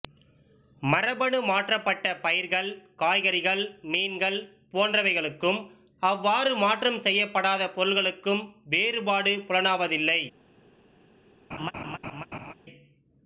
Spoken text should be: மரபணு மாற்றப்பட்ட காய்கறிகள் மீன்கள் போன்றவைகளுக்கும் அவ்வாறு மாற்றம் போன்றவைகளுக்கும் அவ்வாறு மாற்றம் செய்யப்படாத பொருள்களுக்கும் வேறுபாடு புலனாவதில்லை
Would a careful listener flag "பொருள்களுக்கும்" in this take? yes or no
no